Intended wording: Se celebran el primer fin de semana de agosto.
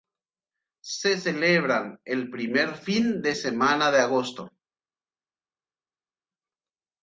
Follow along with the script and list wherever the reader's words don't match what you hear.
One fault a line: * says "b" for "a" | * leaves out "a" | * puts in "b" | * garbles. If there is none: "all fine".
all fine